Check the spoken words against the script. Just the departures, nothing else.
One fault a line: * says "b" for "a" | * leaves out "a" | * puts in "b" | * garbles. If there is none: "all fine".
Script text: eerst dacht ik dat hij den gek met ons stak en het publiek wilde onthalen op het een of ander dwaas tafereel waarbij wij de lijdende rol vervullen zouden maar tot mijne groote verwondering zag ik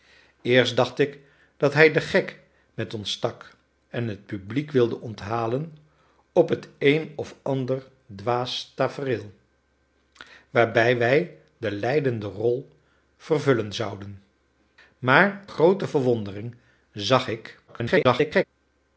* leaves out "tot mijne"
* garbles